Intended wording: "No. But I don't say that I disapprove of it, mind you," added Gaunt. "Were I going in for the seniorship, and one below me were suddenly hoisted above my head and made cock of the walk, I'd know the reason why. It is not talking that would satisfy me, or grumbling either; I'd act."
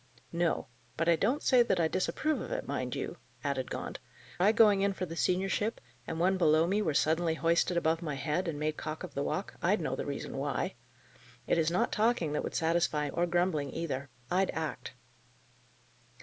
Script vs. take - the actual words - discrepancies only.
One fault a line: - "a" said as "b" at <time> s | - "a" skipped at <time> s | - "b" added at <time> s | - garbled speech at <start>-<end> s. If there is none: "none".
- "Were" skipped at 4.0 s
- "me" skipped at 13.1 s